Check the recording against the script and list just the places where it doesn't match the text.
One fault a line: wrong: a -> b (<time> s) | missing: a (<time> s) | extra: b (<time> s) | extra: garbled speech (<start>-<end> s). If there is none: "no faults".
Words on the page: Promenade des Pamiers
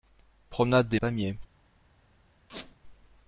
no faults